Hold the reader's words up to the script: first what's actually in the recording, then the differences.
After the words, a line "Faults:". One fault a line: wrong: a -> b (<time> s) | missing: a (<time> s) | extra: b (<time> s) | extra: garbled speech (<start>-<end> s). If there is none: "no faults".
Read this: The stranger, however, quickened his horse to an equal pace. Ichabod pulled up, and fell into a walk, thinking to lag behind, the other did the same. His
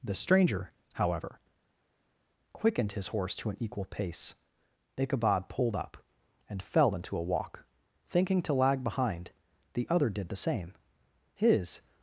The stranger, however, quickened his horse to an equal pace. Ichabod pulled up, and fell into a walk, thinking to lag behind, the other did the same. His
Faults:
no faults